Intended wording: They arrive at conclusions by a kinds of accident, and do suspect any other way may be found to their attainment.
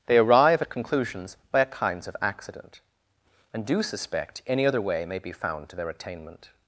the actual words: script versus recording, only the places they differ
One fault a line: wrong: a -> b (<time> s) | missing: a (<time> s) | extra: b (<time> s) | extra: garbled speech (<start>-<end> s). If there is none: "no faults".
no faults